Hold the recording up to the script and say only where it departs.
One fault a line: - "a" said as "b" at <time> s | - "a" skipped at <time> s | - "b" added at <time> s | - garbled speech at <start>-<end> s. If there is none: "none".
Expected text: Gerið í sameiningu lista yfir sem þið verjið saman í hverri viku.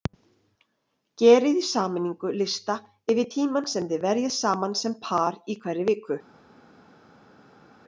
- "tímann" added at 3.3 s
- "sem par" added at 4.8 s